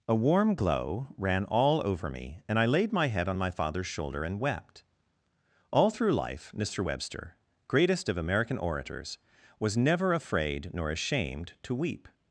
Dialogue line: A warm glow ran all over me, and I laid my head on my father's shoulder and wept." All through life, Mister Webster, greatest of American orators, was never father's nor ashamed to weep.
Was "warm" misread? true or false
false